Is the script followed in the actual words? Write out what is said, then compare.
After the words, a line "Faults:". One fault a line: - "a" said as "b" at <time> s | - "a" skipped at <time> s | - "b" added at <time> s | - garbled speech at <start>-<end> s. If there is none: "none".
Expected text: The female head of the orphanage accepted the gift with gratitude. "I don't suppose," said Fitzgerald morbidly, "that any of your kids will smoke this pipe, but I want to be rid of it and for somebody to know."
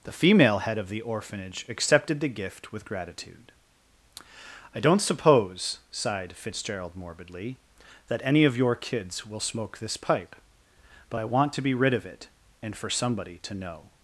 The female head of the orphanage accepted the gift with gratitude. "I don't suppose," sighed Fitzgerald morbidly, "that any of your kids will smoke this pipe, but I want to be rid of it and for somebody to know."
Faults:
- "said" said as "sighed" at 5.9 s